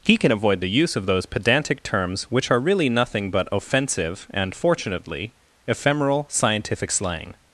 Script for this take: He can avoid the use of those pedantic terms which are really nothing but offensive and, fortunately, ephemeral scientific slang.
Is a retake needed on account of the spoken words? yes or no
no